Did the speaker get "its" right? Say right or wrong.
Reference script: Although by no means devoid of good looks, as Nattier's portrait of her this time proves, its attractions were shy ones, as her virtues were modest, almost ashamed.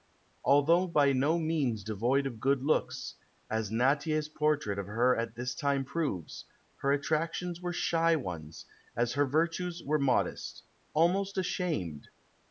wrong